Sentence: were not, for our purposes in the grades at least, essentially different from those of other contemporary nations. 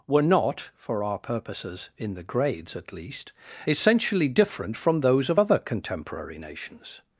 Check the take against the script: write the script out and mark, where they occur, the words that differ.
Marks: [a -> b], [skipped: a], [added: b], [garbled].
were not, for our purposes in the grades at least, essentially different from those of other contemporary nations.